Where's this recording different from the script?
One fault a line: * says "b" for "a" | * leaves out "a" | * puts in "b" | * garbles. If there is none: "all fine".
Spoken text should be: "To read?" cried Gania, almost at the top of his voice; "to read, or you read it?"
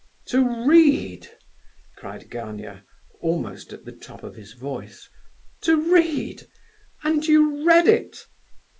* says "and" for "or"